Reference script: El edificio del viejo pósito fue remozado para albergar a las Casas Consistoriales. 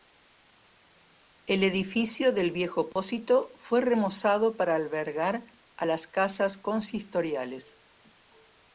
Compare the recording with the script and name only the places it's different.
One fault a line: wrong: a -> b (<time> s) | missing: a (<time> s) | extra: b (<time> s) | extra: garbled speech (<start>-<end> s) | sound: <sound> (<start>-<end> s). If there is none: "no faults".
sound: dropout (2.9-3.0 s)